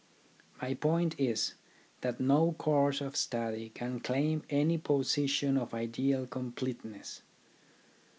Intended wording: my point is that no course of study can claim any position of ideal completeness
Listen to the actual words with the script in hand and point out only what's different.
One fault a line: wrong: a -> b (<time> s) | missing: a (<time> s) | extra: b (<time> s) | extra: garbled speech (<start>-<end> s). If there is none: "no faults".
no faults